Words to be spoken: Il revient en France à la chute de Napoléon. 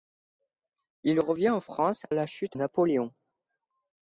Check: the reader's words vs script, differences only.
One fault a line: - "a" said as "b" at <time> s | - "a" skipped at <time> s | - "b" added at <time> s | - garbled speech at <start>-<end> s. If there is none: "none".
- "à" skipped at 2.1 s
- "de" skipped at 2.6 s